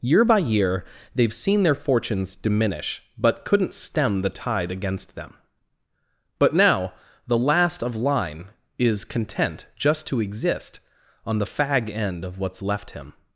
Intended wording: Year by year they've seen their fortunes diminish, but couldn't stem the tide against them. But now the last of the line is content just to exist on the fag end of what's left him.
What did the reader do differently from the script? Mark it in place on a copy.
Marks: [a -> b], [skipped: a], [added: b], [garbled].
Year by year they've seen their fortunes diminish, but couldn't stem the tide against them. But now the last of [skipped: the] line is content just to exist on the fag end of what's left him.